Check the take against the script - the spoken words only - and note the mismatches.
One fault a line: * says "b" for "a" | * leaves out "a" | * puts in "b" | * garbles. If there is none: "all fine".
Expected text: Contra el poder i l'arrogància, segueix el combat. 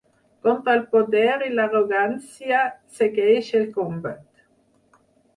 all fine